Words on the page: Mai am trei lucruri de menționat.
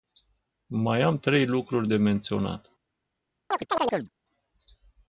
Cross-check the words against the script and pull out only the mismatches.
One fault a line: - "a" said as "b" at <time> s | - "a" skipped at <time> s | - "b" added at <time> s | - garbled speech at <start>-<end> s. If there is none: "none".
none